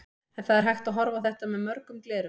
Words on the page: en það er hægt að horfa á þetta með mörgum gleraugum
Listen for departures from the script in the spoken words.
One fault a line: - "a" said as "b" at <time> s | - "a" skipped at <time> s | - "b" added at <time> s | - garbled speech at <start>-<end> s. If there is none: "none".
none